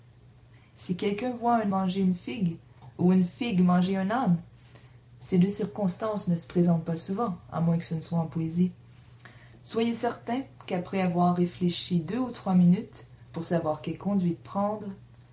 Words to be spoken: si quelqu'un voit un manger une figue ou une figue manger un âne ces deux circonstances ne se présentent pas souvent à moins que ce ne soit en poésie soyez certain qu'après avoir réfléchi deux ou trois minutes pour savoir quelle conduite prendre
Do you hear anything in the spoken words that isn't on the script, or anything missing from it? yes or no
no